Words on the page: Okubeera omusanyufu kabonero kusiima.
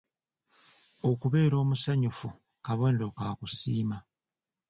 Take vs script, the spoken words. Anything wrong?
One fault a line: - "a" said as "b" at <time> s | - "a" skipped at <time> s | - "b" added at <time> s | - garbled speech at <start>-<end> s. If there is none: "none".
- "ka" added at 3.2 s